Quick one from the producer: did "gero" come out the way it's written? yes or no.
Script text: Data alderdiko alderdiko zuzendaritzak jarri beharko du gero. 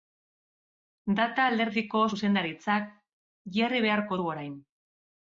no